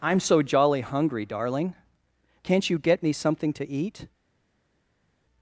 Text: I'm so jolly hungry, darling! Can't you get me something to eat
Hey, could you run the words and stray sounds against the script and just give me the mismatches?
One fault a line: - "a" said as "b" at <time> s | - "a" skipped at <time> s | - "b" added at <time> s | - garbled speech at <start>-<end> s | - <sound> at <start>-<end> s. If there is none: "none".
none